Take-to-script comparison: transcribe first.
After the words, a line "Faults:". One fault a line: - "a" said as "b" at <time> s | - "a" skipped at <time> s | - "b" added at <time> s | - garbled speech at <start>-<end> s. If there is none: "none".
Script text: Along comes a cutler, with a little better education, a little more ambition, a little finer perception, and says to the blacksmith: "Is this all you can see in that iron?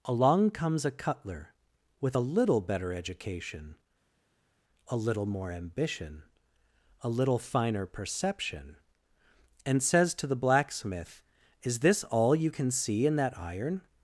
Along comes a cutler, with a little better education, a little more ambition, a little finer perception, and says to the blacksmith: "Is this all you can see in that iron?
Faults:
none